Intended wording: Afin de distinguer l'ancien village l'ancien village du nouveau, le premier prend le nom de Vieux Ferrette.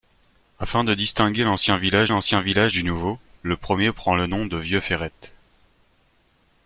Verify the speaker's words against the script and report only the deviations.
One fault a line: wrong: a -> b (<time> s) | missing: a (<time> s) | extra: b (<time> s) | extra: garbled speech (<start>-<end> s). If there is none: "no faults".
no faults